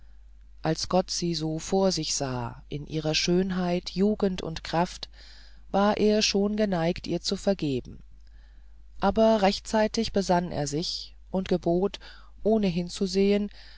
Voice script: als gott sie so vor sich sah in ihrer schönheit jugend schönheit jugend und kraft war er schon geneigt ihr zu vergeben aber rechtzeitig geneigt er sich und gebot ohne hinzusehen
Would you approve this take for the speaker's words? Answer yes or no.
no